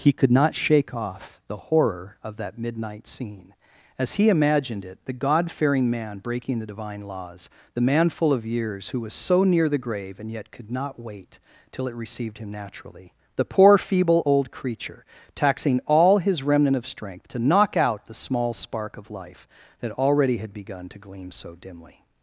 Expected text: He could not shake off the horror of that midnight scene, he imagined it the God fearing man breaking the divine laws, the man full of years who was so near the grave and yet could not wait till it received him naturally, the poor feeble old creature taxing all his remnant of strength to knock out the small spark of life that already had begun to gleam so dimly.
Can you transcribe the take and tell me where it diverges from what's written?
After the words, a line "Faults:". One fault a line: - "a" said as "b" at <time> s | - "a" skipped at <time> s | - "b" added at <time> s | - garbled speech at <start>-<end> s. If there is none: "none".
He could not shake off the horror of that midnight scene, as he imagined it the God fearing man breaking the divine laws, the man full of years who was so near the grave and yet could not wait till it received him naturally, the poor feeble old creature taxing all his remnant of strength to knock out the small spark of life that already had begun to gleam so dimly.
Faults:
- "as" added at 4.0 s